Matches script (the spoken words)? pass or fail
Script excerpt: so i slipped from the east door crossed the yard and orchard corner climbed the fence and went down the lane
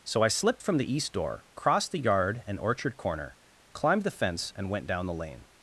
pass